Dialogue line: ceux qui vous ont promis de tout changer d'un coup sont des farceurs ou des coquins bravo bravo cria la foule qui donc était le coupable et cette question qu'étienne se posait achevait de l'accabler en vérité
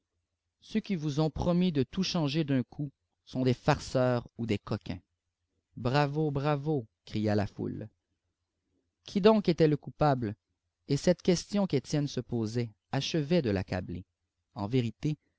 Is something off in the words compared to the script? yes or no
no